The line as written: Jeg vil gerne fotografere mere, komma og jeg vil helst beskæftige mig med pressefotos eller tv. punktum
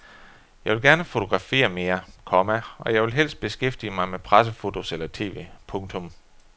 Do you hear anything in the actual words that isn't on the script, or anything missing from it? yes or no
no